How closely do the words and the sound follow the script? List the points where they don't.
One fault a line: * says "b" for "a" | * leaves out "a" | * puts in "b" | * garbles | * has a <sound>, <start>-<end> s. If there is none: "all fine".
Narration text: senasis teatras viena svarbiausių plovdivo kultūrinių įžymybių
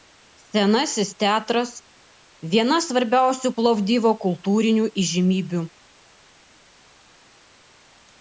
all fine